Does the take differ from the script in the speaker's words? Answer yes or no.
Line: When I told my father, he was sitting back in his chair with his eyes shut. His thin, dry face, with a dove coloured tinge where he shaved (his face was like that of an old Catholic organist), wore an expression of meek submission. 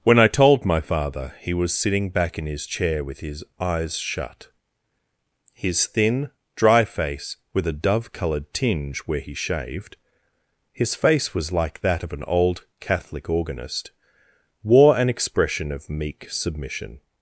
no